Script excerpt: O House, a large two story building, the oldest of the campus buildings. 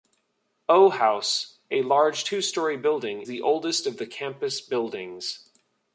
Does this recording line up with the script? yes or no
yes